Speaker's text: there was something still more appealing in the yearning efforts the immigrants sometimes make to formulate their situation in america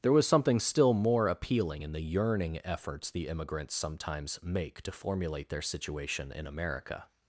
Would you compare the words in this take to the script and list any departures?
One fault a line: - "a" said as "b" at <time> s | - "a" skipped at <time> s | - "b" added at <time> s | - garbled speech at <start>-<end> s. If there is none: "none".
none